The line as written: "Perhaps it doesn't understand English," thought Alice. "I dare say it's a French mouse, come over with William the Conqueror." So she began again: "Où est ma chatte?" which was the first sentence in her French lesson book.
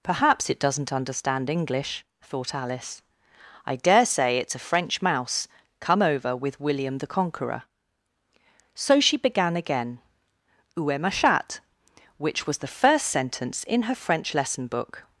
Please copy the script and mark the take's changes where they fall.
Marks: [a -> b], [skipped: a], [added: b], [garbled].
"Perhaps it doesn't understand English," thought Alice. "I dare say it's a French mouse, come over with William the Conqueror." So she began again: "Où est ma chatte?" which was the first sentence in her French lesson book.